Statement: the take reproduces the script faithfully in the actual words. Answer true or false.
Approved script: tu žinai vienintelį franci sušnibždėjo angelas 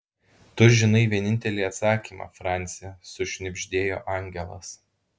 false